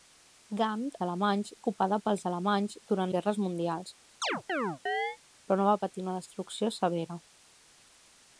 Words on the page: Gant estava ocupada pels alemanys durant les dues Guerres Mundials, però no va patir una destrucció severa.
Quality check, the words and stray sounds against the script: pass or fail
fail